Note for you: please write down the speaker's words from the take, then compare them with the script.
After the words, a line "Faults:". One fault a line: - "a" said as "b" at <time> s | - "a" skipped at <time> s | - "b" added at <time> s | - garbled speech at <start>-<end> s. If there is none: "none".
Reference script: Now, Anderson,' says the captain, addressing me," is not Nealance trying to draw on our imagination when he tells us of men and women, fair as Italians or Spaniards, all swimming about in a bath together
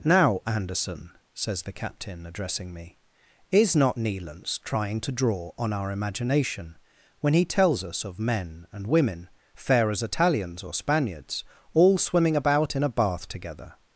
Now, Anderson,' says the captain, addressing me," is not Nealance trying to draw on our imagination when he tells us of men and women, fair as Italians or Spaniards, all swimming about in a bath together
Faults:
none